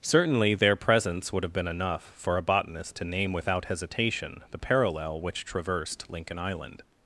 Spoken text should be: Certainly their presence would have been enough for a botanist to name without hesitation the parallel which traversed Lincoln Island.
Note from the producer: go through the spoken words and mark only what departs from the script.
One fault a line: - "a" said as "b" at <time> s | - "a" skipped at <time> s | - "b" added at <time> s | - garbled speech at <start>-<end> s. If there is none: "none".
none